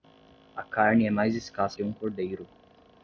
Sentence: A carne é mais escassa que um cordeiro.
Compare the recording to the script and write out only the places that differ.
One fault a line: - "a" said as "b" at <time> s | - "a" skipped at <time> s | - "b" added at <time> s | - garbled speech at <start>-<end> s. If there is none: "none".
none